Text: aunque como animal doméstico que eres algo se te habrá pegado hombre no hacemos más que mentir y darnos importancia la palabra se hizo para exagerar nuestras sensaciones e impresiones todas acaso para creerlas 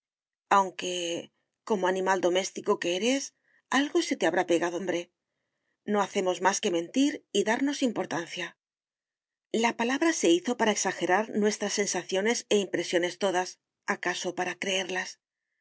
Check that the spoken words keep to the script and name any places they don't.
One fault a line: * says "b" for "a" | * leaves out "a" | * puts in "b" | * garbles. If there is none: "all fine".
all fine